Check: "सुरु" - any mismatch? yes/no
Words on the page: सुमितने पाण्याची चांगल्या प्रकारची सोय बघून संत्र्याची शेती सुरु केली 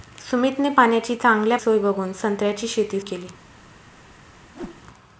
yes